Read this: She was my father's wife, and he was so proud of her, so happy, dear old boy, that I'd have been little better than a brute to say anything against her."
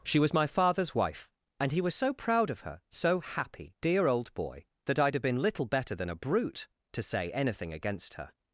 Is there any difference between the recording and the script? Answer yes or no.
no